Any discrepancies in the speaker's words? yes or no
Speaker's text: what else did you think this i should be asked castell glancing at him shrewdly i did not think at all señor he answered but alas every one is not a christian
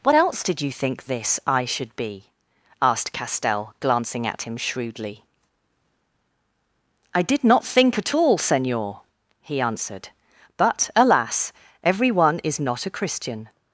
no